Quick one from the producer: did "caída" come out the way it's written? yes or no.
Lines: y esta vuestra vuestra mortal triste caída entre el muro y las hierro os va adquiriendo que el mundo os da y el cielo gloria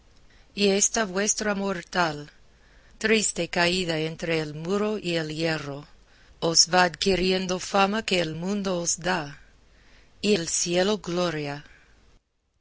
yes